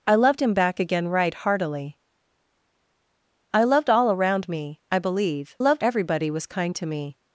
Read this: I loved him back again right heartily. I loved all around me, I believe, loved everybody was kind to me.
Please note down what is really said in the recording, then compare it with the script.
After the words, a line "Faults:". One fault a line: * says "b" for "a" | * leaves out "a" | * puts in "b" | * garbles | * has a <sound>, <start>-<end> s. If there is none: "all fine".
I loved him back again right heartily. I loved all around me, I believe, loved everybody was kind to me.
Faults:
all fine